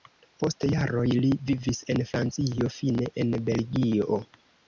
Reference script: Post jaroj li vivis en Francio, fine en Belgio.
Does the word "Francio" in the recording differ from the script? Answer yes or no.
no